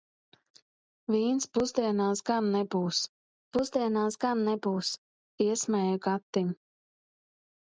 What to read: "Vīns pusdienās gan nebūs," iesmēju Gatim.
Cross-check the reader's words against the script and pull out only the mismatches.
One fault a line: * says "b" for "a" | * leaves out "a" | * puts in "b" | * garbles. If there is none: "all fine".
* puts in "pusdienās gan nebūs"